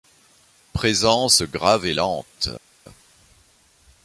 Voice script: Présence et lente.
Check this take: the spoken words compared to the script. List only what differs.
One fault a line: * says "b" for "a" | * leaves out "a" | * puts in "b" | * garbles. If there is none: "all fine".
* puts in "grave"